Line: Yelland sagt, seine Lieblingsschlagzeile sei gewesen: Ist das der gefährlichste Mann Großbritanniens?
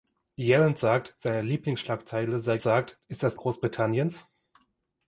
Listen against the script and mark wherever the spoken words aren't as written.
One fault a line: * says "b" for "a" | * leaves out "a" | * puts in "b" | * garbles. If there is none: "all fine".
* says "sagt" for "gewesen"
* leaves out "der gefährlichste Mann"